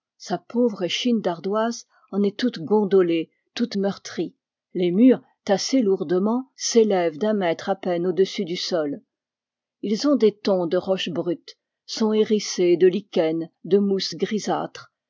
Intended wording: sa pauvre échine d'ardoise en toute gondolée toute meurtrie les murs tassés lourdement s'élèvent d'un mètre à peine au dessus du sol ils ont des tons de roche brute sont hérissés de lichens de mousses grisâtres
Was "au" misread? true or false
false